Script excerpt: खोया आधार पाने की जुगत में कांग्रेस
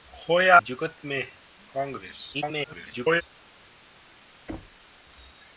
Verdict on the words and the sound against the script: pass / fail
fail